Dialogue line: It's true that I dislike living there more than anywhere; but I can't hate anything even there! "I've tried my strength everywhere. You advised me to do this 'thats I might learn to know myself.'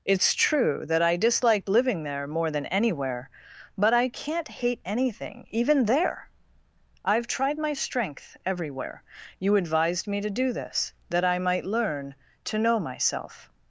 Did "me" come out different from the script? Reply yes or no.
no